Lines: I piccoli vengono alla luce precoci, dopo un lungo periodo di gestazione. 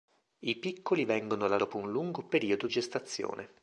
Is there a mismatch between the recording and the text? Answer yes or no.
yes